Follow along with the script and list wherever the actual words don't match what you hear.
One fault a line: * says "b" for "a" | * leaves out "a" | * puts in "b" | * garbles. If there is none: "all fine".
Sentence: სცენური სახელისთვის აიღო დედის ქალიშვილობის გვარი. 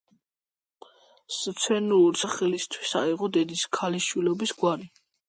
all fine